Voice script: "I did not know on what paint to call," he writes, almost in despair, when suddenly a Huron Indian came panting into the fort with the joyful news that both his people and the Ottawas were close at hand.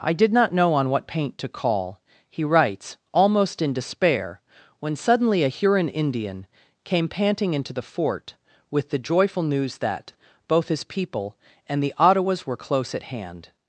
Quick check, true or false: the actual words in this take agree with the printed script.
true